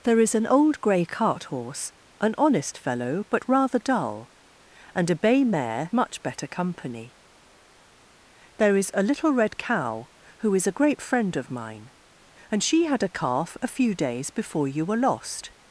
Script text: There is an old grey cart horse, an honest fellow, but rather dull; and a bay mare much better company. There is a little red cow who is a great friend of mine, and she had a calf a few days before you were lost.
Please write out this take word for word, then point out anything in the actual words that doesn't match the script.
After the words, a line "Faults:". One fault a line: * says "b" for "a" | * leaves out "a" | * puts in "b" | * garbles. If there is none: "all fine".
There is an old grey cart horse, an honest fellow, but rather dull; and a bay mare much better company. There is a little red cow who is a great friend of mine, and she had a calf a few days before you were lost.
Faults:
all fine